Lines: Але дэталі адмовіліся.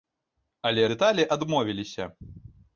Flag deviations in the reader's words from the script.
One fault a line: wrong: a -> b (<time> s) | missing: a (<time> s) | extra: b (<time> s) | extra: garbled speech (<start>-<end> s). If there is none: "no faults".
no faults